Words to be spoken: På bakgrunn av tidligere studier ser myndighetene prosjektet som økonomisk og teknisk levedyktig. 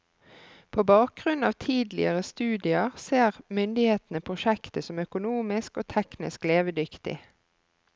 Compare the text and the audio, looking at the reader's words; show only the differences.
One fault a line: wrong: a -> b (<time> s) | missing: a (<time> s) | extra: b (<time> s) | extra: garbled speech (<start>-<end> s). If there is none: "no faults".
no faults